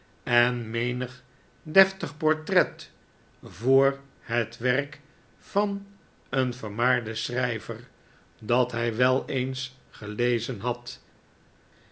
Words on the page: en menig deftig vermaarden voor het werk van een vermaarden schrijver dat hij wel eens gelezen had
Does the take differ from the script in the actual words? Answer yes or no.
yes